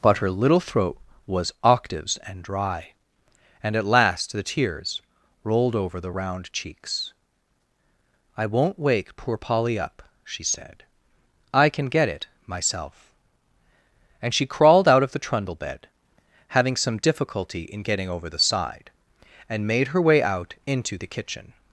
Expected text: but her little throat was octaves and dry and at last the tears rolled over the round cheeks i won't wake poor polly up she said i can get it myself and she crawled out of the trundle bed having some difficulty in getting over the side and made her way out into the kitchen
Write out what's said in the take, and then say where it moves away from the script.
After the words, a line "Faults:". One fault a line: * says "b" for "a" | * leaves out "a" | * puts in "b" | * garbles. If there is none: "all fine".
but her little throat was octaves and dry and at last the tears rolled over the round cheeks i won't wake poor polly up she said i can get it myself and she crawled out of the trundle bed having some difficulty in getting over the side and made her way out into the kitchen
Faults:
all fine